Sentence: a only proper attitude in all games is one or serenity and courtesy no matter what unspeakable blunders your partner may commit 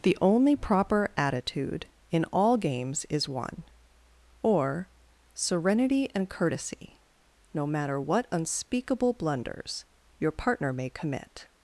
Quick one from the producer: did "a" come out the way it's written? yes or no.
no